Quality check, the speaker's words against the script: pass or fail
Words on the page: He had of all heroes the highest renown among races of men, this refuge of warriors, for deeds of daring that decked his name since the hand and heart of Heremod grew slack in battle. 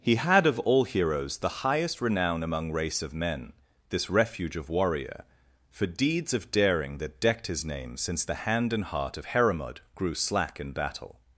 fail